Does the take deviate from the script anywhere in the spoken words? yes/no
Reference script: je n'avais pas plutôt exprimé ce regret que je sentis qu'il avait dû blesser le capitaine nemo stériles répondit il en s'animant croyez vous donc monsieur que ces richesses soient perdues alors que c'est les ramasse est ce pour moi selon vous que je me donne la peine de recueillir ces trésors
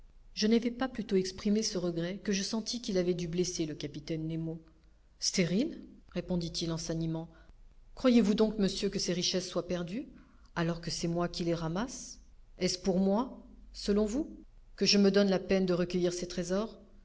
yes